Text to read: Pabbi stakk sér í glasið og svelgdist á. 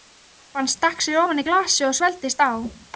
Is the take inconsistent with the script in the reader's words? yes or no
yes